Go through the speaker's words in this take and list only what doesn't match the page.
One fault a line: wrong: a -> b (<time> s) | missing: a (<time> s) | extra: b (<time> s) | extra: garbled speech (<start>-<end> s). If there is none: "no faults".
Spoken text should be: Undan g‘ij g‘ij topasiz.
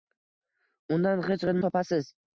no faults